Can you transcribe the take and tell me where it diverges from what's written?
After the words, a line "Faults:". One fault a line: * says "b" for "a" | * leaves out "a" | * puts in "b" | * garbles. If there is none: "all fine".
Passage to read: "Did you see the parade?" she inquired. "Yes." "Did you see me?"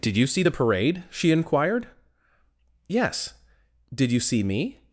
"Did you see the parade?" she inquired. "Yes." "Did you see me?"
Faults:
all fine